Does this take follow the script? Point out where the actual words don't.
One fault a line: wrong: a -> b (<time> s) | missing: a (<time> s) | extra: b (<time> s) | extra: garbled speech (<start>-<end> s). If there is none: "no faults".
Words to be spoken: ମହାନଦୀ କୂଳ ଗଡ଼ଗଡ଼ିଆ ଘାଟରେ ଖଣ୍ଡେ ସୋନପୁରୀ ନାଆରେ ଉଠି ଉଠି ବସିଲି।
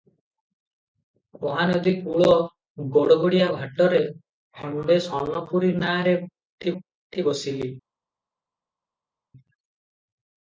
no faults